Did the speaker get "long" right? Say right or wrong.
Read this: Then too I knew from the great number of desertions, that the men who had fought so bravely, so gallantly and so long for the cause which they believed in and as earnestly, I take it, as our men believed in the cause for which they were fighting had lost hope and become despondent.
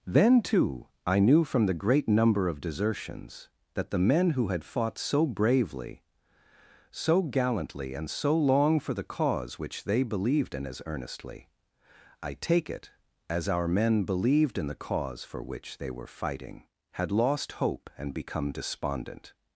right